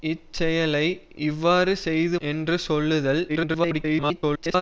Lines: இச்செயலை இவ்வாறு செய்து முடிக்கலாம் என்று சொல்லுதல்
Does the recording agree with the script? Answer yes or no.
no